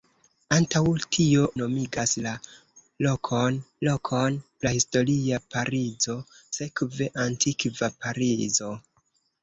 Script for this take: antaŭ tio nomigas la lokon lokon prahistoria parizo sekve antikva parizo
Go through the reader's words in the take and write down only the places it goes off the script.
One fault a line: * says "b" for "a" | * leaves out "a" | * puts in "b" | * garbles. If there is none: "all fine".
all fine